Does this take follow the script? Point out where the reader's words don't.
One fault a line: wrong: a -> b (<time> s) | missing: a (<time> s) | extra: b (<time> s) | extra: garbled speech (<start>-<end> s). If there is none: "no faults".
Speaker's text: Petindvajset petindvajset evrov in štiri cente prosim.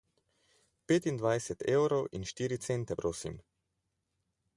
missing: petindvajset (1.6 s)